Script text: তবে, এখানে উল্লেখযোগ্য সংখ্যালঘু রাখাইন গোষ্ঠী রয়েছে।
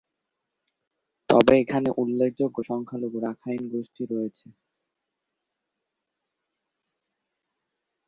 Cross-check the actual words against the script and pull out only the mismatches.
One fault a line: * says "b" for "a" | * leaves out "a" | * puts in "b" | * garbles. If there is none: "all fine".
all fine